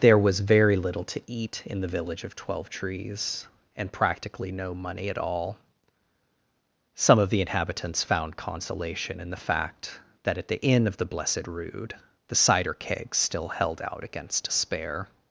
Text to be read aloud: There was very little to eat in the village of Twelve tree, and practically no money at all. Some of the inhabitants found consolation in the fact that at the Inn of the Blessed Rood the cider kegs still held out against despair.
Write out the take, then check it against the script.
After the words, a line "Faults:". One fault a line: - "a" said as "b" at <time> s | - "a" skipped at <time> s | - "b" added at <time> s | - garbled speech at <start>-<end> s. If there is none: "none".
There was very little to eat in the village of Twelve trees, and practically no money at all. Some of the inhabitants found consolation in the fact that at the Inn of the Blessed Rood the cider kegs still held out against despair.
Faults:
- "tree" said as "trees" at 2.7 s